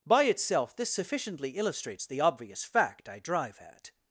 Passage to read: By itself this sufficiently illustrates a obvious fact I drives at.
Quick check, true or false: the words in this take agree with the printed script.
false